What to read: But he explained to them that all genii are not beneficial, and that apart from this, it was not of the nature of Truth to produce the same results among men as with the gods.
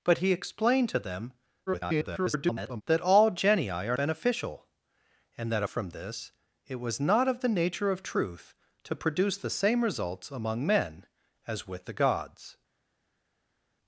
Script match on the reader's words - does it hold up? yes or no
no